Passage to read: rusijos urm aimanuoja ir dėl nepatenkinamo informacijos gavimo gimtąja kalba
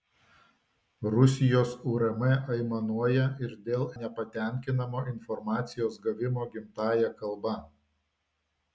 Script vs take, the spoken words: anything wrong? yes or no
no